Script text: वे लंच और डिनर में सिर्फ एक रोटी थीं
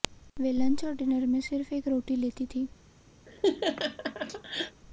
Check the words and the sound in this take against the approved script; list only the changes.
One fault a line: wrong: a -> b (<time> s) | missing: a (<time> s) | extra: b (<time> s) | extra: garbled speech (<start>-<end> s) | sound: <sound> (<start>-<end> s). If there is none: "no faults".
extra: लेती (2.1 s)
sound: laugh (3.3-4.8 s)